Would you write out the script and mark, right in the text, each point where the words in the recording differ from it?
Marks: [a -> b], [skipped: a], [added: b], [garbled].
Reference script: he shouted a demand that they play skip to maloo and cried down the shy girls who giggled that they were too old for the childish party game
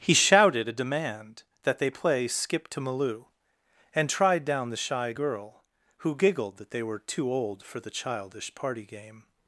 he shouted a demand that they play skip to maloo and [cried -> tried] down the shy [girls -> girl] who giggled that they were too old for the childish party game